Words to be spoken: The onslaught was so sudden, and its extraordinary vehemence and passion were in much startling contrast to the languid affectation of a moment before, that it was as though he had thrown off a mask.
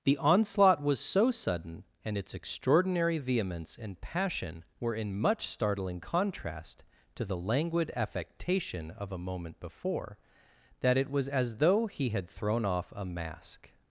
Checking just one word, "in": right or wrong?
right